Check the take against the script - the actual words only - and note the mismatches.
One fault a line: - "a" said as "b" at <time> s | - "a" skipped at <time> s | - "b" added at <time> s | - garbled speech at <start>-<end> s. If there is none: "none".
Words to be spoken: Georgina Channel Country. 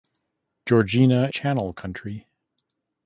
none